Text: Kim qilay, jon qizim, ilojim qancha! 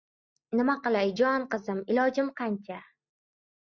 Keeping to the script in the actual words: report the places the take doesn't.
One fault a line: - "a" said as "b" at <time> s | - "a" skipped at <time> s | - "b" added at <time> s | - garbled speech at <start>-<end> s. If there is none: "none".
- "Kim" said as "Nima" at 0.6 s